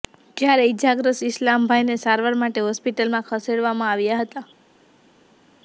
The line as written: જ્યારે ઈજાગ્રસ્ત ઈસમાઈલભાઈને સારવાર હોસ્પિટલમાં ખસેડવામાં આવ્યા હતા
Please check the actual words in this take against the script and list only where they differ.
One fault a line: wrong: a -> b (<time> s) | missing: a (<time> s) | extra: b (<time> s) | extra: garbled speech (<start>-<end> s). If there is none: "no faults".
extra: માટે (2.4 s)